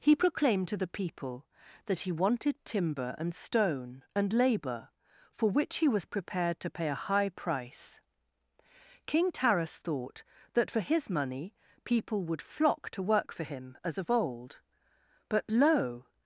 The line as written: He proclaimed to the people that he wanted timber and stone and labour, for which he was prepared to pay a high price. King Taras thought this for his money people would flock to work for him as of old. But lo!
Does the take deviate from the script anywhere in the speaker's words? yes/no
yes